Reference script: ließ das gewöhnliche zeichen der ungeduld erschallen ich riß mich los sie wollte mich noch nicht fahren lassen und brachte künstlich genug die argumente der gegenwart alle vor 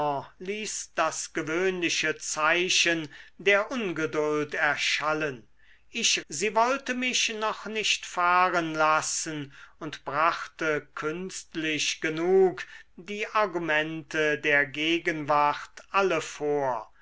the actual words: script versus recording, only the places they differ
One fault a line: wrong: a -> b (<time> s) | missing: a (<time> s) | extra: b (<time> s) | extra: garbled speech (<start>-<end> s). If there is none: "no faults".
missing: riß mich los (6.2 s)